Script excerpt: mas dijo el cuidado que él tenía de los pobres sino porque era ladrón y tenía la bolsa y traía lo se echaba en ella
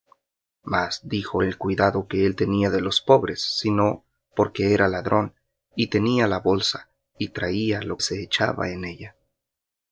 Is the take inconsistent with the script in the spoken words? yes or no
no